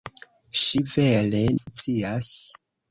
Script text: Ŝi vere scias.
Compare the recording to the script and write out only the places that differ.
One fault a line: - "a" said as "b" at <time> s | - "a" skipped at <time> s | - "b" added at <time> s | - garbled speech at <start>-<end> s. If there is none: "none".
none